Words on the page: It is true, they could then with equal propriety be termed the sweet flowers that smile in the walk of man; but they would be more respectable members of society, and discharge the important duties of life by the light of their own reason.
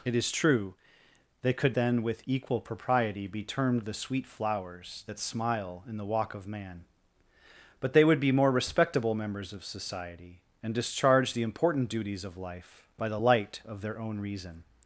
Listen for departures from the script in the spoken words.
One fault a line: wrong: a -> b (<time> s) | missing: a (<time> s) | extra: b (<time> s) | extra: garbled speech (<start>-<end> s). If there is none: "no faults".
no faults